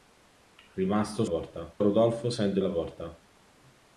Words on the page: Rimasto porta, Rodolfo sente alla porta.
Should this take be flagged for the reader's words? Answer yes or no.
no